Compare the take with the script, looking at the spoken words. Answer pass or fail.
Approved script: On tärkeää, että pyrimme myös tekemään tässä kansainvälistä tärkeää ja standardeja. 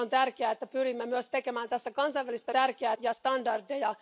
pass